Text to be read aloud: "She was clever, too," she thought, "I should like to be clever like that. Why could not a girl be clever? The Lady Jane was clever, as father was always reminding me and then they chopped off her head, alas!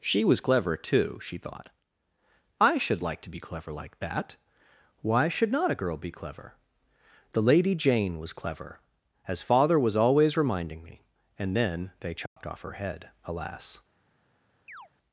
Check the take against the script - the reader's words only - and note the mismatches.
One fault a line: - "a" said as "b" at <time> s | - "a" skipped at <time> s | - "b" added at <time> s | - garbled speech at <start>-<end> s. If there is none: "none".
- "could" said as "should" at 5.3 s